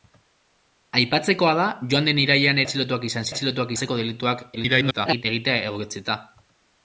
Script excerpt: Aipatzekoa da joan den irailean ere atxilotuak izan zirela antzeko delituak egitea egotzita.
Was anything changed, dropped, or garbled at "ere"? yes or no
yes